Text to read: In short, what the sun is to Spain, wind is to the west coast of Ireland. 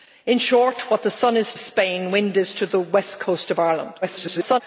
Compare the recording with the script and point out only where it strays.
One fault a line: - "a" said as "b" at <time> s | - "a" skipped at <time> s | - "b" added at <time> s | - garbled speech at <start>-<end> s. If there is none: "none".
- "to" skipped at 1.5 s
- garbled speech at 4.0-4.6 s